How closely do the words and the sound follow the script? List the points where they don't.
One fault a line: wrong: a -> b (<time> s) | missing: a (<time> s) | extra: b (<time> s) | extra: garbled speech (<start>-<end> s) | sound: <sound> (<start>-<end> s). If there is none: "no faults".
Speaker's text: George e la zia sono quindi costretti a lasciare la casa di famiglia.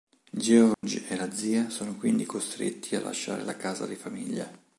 sound: dropout (0.7-0.8 s)